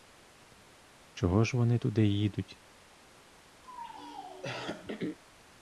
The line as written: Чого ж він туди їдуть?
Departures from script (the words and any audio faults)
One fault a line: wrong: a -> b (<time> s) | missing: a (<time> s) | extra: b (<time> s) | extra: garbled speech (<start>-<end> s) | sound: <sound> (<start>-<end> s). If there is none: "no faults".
wrong: він -> вони (1.6 s)
sound: throat clearing (3.6-5.2 s)